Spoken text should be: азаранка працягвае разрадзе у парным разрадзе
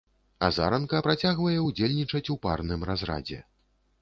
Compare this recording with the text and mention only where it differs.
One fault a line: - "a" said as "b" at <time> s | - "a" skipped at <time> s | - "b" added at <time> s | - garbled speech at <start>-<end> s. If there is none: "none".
- "разрадзе" said as "ўдзельнічаць" at 1.7 s